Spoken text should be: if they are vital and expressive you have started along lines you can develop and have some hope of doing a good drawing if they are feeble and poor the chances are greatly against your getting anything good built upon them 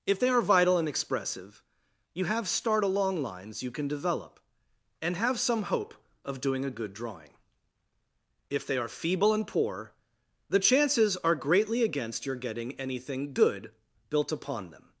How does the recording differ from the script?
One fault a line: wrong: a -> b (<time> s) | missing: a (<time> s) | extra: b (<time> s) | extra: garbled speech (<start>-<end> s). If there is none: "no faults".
wrong: started -> start (2.5 s)